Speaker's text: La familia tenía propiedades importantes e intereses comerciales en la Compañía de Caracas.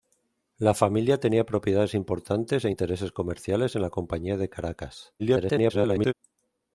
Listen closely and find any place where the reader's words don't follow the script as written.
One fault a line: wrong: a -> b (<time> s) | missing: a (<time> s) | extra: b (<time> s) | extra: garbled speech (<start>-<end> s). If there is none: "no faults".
extra: garbled speech (5.2-6.1 s)